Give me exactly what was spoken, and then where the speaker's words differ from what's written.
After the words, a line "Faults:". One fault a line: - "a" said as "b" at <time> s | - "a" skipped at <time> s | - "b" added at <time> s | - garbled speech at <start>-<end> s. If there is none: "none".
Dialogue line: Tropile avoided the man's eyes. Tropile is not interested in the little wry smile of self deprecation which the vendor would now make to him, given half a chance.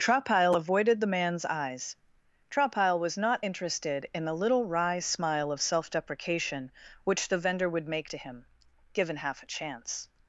Tropile avoided the man's eyes. Tropile was not interested in the little wry smile of self deprecation which the vendor would make to him, given half a chance.
Faults:
- "is" said as "was" at 3.0 s
- "now" skipped at 7.9 s